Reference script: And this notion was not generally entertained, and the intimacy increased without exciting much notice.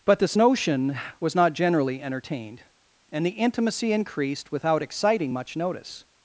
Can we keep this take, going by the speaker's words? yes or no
no